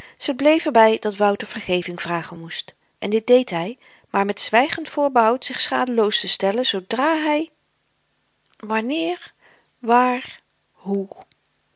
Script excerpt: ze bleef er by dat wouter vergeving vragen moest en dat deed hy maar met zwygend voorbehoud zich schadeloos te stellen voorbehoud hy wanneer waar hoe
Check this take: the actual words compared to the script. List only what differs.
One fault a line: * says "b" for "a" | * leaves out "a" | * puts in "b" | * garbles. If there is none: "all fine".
* says "dit" for "dat"
* says "zoodra" for "voorbehoud"